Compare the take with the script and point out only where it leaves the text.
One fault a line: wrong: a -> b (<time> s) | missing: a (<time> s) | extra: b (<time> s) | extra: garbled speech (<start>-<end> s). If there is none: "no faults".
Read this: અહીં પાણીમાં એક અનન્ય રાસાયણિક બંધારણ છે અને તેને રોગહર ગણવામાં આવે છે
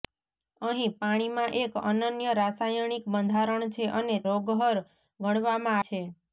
missing: તેને (4.2 s)
missing: આવે (5.8 s)